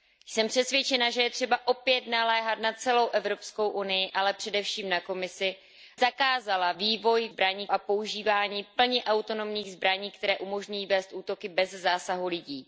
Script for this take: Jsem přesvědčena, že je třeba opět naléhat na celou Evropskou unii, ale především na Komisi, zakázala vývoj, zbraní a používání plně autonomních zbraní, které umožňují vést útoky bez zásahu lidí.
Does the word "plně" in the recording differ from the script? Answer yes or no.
no